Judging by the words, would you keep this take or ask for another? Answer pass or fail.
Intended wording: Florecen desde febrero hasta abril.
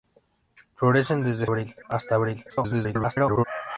fail